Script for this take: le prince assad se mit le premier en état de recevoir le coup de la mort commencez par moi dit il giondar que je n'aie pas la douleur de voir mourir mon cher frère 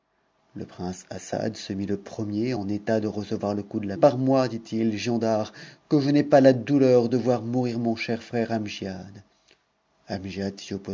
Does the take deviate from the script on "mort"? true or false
true